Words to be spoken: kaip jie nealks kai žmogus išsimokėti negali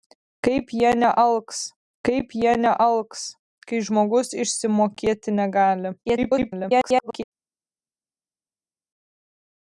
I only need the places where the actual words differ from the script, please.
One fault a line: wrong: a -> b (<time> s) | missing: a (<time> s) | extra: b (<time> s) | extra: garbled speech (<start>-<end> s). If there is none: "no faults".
extra: kaip jie nealks (2.1 s)
extra: garbled speech (6.1-7.2 s)